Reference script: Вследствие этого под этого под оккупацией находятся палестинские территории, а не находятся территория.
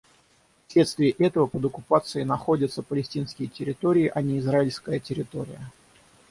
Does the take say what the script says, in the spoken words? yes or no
no